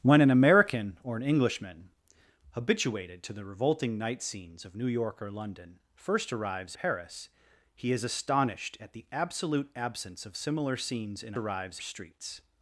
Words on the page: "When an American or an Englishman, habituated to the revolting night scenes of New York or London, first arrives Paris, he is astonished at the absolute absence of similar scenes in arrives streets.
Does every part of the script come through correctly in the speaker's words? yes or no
yes